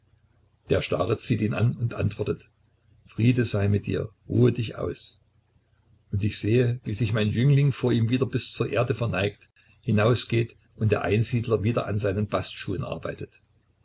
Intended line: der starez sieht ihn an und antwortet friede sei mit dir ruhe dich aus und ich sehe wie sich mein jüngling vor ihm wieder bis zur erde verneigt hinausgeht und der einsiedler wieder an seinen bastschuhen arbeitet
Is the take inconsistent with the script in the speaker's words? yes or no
no